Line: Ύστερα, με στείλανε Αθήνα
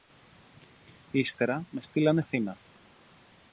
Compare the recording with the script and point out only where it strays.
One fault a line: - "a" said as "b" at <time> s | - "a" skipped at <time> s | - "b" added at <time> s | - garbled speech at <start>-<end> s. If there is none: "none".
none